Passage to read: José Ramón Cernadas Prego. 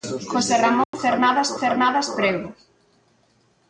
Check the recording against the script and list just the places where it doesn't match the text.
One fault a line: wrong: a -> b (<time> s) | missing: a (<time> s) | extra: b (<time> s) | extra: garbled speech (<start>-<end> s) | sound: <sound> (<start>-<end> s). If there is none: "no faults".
sound: dropout (0.8-0.9 s)
extra: Cernadas (1.6 s)